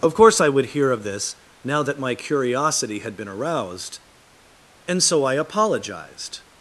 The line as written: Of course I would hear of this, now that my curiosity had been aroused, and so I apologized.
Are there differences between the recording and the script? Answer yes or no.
no